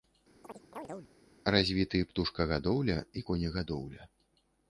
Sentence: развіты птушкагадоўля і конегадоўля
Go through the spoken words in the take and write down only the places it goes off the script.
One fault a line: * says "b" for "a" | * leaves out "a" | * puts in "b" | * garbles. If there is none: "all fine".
all fine